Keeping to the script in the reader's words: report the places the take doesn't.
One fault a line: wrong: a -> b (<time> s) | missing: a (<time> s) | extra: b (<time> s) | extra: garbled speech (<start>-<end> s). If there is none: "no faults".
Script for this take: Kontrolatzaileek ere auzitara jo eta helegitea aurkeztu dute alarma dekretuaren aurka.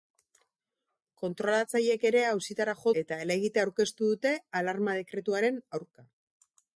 no faults